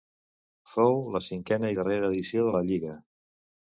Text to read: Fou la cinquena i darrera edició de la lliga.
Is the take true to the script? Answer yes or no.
yes